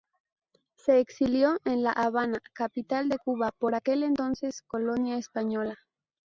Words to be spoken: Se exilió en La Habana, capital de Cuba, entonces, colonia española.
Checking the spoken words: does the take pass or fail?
fail